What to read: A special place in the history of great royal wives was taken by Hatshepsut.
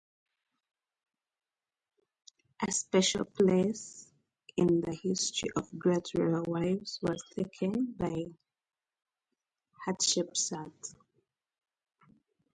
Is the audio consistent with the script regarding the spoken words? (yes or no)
yes